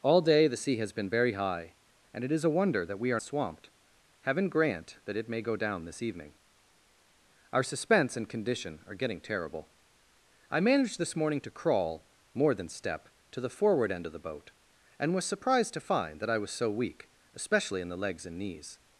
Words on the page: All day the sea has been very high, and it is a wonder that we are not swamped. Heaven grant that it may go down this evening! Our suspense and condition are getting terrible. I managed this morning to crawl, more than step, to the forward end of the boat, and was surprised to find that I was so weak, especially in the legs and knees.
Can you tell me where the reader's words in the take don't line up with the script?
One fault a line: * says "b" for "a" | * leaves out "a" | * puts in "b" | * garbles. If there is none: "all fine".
* leaves out "not"